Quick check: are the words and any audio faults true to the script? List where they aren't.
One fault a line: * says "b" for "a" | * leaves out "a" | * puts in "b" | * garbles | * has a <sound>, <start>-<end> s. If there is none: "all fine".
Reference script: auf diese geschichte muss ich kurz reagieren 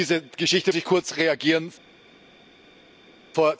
* leaves out "muss"